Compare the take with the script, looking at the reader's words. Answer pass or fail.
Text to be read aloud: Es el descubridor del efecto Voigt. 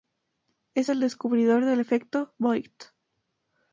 pass